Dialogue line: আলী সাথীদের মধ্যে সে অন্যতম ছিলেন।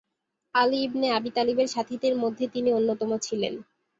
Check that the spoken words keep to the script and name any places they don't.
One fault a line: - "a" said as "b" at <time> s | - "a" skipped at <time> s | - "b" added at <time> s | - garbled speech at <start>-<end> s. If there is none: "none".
- "ইবনে আবী তালিবের" added at 0.8 s
- "সে" said as "তিনি" at 2.5 s